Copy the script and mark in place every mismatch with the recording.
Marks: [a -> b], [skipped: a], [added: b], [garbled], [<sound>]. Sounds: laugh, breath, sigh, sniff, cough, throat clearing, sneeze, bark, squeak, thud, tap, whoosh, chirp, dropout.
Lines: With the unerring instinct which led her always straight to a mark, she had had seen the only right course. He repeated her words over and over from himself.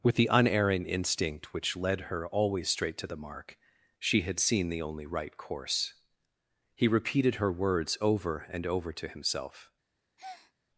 With the unerring instinct which led her always straight to [a -> the] mark, she had [skipped: had] seen the only right course. He repeated her words over and over [from -> to] himself. [breath]